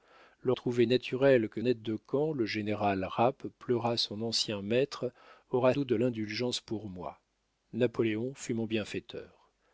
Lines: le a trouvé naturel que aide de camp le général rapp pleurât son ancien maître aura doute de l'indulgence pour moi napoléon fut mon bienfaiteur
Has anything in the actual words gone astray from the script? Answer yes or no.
no